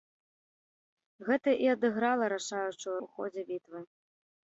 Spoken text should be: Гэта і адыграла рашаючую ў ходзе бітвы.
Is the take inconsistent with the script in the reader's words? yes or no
no